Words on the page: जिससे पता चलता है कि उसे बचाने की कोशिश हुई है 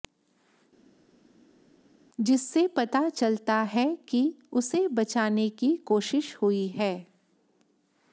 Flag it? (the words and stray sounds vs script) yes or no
no